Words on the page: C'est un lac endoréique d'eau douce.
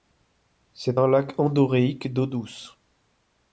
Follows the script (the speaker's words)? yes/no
yes